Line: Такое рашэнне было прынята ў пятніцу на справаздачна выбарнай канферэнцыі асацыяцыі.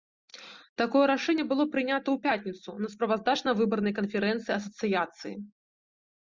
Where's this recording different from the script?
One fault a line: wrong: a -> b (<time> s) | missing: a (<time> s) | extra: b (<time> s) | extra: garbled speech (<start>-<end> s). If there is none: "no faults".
no faults